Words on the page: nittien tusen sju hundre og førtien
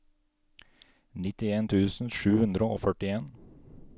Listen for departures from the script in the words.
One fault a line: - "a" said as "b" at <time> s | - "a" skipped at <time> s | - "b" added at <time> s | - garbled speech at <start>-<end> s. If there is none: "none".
none